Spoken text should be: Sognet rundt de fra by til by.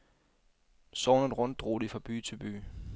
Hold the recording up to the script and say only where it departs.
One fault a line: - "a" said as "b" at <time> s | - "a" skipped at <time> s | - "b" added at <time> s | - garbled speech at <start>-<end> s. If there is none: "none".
- "drog" added at 1.6 s